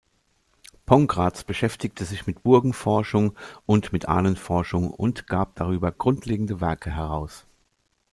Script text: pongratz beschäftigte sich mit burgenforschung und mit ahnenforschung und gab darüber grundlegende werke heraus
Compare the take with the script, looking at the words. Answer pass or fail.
pass